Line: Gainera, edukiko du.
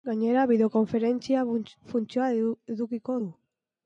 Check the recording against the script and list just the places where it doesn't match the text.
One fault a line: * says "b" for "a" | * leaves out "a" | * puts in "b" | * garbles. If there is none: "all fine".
* puts in "bideokonferentzia funtzioa"